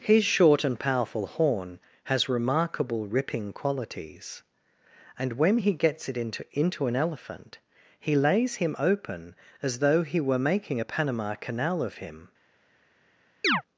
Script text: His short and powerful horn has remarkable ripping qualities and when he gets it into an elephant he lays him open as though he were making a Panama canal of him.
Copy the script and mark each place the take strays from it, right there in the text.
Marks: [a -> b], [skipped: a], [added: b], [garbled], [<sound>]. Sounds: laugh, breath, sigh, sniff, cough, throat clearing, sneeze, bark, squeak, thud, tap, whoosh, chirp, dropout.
His short and powerful horn has remarkable ripping qualities and when he gets it into [added: into] an elephant he lays him open as though he were making a Panama canal of him. [chirp]